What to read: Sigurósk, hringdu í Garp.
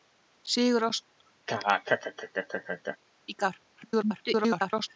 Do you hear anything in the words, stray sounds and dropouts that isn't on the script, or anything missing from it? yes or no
yes